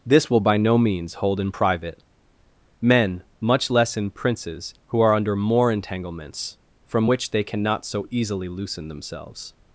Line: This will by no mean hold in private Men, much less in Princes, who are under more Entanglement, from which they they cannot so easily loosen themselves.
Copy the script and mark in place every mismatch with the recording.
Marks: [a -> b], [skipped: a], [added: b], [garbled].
This will by no [mean -> means] hold in private Men, much less in Princes, who are under more [Entanglement, -> Entanglements] from which they [skipped: they] cannot so easily loosen themselves.